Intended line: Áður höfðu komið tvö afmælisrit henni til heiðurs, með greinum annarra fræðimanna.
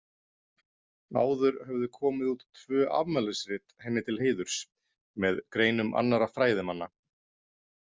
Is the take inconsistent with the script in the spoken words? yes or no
yes